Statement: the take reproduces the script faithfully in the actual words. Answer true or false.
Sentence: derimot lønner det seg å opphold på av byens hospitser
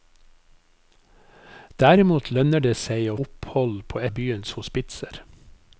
true